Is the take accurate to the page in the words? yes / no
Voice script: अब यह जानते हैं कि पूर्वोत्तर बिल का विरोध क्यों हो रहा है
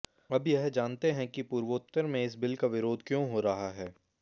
no